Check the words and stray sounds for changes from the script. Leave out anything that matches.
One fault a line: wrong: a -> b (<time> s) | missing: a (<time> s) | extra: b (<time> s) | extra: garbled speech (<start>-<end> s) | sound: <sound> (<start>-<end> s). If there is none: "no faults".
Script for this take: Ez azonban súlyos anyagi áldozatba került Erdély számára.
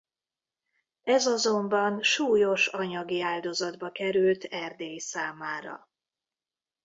no faults